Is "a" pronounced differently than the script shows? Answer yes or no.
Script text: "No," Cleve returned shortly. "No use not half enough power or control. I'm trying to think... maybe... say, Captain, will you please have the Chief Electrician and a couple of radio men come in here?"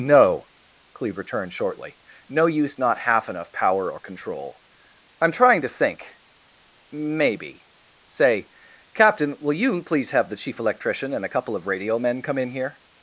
no